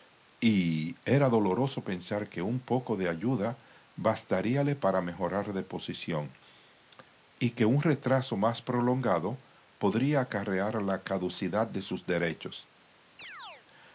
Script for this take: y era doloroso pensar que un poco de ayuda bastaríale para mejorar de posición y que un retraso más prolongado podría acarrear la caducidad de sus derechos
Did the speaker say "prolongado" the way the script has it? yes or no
yes